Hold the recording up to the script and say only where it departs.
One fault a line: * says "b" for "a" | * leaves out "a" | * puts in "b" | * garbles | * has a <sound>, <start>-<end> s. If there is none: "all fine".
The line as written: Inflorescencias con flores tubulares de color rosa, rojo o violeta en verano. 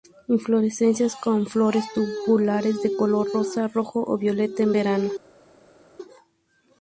all fine